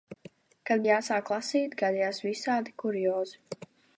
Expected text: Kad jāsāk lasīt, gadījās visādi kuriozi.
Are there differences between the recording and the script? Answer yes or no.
no